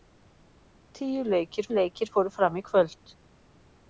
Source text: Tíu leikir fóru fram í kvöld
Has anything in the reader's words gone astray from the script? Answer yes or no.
yes